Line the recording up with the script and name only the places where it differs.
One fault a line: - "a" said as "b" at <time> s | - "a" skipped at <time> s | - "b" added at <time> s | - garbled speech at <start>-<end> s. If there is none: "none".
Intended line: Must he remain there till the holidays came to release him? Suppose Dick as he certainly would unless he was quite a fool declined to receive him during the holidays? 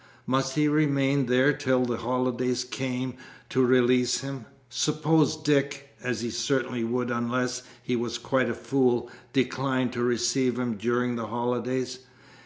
none